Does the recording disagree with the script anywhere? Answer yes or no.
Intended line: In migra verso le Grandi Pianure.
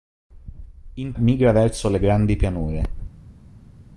no